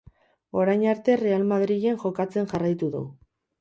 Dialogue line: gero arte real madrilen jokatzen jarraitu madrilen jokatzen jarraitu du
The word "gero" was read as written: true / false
false